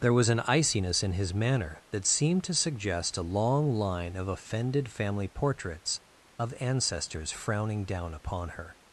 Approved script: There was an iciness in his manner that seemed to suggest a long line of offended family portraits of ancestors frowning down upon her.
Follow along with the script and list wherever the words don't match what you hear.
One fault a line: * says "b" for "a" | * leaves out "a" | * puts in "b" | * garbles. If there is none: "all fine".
all fine